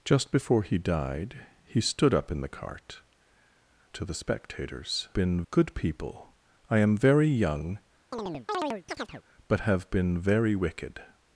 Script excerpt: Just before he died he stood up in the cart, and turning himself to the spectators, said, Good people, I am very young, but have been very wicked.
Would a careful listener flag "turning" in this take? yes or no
yes